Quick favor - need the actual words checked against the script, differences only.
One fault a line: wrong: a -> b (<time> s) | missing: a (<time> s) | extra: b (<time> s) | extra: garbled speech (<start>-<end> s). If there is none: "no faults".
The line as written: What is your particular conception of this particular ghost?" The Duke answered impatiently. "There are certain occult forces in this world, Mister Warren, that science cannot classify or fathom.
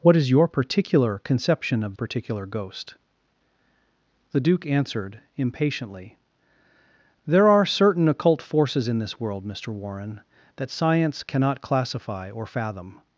missing: this (1.9 s)